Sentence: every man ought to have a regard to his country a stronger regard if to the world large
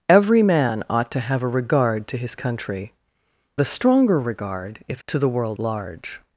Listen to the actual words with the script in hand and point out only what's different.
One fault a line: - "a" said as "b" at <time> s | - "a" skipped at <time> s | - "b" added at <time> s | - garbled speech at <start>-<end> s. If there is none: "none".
none